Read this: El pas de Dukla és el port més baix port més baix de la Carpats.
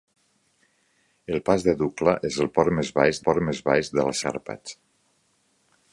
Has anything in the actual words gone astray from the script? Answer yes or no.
no